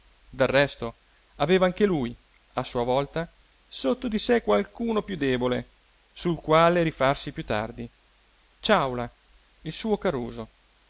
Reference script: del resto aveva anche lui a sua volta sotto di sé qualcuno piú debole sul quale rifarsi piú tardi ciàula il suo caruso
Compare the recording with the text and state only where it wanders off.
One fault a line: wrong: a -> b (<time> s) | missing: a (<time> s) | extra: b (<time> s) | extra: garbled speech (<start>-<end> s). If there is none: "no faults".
no faults